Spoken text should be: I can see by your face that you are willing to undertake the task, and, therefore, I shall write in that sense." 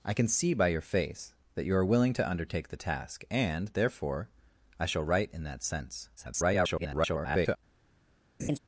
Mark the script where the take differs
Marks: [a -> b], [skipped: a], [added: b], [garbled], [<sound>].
I can see by your face that you are willing to undertake the task, and, therefore, I shall write in that sense." [garbled] [laugh]